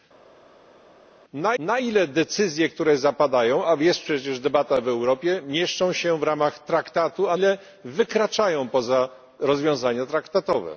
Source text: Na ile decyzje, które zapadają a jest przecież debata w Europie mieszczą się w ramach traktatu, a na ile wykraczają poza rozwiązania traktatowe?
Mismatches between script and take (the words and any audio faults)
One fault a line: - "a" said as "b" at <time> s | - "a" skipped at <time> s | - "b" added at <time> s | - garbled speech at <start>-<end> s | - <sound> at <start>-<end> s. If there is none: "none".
- "na" added at 1.6 s
- "na" skipped at 7.4 s